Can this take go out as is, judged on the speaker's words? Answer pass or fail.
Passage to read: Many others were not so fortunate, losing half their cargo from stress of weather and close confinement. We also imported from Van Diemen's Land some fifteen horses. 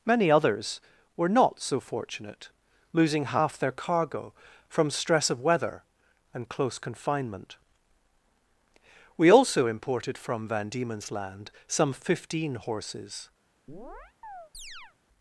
pass